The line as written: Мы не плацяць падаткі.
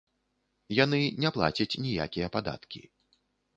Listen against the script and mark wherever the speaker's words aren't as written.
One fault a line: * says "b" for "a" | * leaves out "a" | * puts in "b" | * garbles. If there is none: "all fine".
* says "Яны" for "Мы"
* puts in "ніякія"